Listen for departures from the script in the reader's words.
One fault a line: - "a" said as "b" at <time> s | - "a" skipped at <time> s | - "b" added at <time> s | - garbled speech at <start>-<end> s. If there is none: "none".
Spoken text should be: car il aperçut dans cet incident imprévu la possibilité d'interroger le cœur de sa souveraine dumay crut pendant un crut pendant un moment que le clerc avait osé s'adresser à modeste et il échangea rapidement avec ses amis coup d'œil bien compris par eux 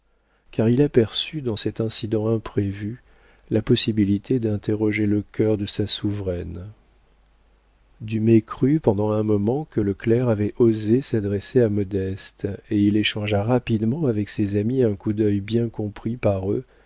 - "crut pendant un" skipped at 9.2 s
- "un" added at 14.8 s